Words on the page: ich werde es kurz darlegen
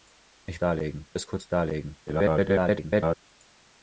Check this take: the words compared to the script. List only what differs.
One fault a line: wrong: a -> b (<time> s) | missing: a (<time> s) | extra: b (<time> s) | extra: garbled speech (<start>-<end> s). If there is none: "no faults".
wrong: werde -> darlegen (0.6 s)
extra: garbled speech (2.1-3.2 s)